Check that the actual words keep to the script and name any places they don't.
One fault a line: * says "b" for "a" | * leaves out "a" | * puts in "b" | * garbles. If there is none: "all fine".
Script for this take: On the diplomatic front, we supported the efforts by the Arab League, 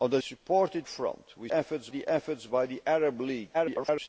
* says "supported" for "diplomatic"
* says "efforts" for "supported"
* garbles